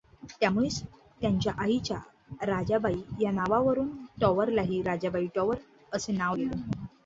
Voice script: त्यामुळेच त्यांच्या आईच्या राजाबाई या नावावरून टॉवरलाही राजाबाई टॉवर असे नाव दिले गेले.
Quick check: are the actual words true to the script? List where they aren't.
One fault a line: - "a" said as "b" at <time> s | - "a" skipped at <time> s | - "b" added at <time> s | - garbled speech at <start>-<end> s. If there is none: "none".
- "दिले" skipped at 6.3 s